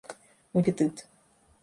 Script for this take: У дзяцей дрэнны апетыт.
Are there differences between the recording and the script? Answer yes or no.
yes